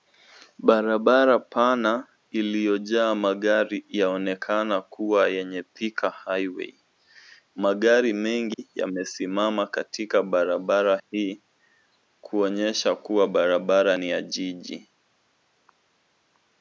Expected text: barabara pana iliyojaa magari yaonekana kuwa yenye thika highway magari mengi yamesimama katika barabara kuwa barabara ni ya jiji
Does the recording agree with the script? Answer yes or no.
no